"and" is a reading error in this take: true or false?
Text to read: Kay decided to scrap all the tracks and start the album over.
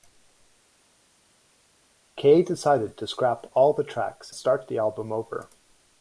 true